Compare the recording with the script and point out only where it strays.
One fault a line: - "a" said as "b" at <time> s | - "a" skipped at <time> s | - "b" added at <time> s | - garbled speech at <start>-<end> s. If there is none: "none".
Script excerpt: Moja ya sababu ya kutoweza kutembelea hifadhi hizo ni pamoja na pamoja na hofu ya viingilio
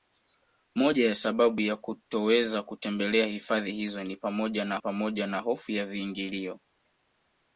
none